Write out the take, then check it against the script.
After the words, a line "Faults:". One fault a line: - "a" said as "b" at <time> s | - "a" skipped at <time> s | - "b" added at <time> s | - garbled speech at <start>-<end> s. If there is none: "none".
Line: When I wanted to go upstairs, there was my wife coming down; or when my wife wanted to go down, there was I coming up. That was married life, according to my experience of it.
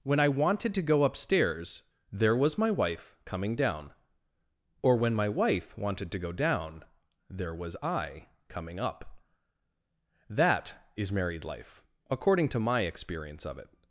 When I wanted to go upstairs, there was my wife coming down; or when my wife wanted to go down, there was I coming up. That is married life, according to my experience of it.
Faults:
- "was" said as "is" at 11.0 s